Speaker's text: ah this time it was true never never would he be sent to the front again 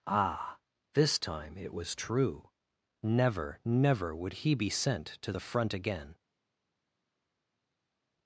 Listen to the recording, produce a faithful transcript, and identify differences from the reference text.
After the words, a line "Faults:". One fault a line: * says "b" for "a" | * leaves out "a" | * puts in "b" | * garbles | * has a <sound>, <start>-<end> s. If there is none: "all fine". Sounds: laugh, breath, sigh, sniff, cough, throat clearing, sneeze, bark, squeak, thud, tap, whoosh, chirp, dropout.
ah this time it was true never never would he be sent to the front again
Faults:
all fine